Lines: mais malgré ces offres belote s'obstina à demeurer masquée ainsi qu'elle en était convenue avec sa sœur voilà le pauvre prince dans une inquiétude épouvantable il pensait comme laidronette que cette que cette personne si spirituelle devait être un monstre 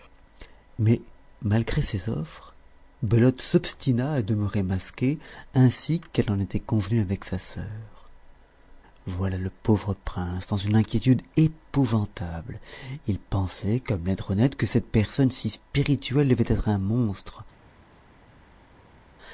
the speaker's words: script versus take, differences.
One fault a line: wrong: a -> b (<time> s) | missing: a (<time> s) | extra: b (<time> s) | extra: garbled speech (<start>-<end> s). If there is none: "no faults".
missing: que cette (14.9 s)